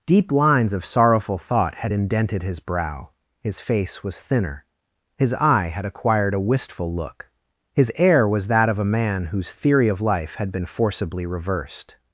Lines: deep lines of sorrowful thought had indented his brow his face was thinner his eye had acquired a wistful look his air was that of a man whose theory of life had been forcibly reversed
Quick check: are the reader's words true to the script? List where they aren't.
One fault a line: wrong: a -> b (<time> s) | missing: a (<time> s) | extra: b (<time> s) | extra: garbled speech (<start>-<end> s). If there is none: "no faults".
no faults